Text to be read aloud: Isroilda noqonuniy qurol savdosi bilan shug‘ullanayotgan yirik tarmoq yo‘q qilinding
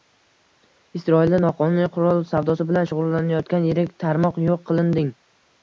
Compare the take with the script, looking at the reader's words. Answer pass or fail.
pass